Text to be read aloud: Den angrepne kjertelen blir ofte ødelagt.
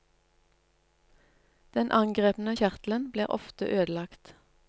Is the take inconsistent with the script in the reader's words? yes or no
no